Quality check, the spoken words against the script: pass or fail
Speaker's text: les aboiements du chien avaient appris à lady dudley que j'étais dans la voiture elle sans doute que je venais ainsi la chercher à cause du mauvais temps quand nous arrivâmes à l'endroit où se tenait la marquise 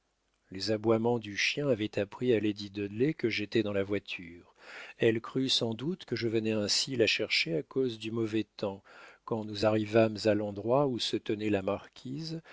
fail